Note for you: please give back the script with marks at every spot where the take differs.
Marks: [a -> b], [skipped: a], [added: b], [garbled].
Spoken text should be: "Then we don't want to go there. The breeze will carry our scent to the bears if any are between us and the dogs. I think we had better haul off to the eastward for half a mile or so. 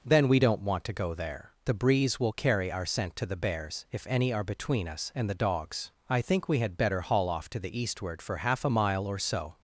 "Then we don't want to go there. The breeze will carry our scent to the bears if any are between us and the dogs. I think we had better haul off to the eastward for half a mile or so.